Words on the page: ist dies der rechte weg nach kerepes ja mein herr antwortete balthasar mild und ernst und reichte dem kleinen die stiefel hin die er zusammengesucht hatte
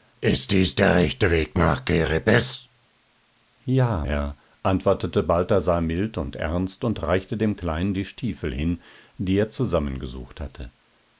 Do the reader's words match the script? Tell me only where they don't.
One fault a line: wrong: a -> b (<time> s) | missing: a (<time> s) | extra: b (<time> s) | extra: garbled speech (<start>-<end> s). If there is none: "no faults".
missing: mein (4.1 s)